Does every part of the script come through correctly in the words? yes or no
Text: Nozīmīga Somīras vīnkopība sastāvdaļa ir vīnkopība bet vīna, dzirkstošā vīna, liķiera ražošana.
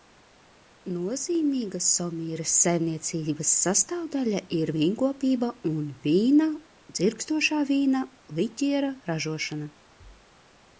no